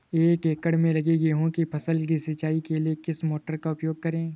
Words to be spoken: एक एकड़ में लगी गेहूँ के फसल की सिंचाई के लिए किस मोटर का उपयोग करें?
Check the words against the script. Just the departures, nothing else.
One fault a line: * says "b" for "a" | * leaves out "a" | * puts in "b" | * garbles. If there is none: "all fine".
* says "की" for "के"